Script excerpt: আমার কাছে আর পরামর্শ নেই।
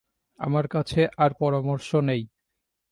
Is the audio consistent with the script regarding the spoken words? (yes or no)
yes